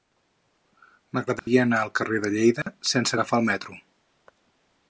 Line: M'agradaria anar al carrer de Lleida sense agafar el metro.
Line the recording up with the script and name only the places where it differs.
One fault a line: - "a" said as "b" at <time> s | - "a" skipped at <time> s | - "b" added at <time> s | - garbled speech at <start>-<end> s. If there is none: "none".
none